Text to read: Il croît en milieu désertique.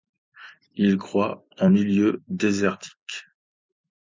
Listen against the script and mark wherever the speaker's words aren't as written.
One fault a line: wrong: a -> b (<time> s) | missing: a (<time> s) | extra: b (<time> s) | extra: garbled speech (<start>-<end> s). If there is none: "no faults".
no faults